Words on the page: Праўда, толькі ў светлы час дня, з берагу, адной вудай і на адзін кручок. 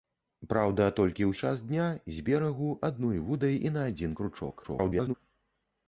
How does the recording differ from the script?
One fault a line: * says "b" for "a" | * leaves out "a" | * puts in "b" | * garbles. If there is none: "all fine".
* leaves out "светлы"
* garbles